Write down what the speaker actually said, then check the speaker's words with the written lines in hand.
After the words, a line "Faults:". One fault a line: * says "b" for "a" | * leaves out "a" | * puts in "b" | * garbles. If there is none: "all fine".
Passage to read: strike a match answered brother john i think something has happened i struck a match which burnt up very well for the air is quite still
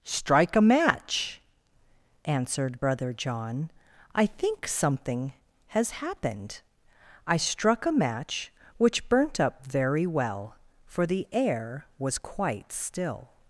strike a match answered brother john i think something has happened i struck a match which burnt up very well for the air was quite still
Faults:
* says "was" for "is"